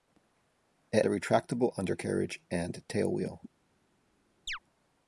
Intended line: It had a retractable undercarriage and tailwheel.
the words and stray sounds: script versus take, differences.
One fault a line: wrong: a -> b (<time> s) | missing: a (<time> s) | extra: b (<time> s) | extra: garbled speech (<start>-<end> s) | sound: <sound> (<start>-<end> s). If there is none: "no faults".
missing: had (1.1 s)
sound: chirp (4.5-4.6 s)